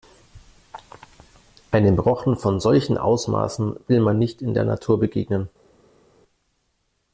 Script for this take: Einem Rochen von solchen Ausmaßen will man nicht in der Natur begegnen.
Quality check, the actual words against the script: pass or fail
pass